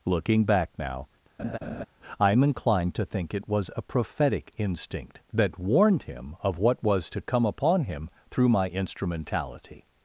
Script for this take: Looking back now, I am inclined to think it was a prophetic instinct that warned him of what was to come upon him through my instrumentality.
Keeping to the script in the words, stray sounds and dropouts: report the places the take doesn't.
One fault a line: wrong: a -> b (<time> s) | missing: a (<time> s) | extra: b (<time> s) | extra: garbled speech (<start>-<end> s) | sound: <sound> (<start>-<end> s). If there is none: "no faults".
sound: laugh (1.4-1.9 s)